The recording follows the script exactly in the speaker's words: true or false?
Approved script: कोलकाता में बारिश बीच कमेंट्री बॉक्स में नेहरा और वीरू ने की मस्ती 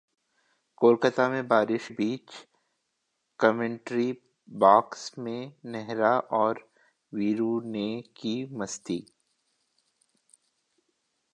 true